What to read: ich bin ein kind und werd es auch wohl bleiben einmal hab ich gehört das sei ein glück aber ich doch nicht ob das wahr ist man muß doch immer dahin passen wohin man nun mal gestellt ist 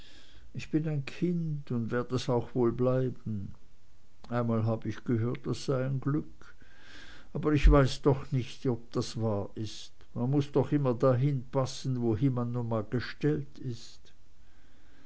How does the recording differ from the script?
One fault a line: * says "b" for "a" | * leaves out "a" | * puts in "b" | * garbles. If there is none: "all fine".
* puts in "weiß"